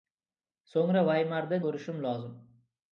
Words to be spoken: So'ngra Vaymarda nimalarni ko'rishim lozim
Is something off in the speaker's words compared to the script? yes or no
yes